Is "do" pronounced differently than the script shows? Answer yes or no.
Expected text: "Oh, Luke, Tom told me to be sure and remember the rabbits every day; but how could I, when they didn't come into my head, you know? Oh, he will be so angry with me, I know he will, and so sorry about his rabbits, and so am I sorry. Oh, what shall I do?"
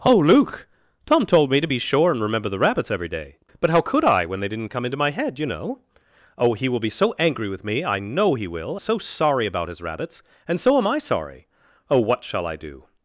no